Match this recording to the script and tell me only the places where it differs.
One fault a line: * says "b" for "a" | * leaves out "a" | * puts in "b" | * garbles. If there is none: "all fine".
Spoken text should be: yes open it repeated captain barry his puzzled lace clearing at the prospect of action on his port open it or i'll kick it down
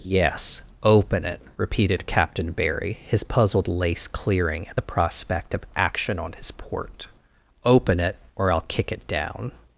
all fine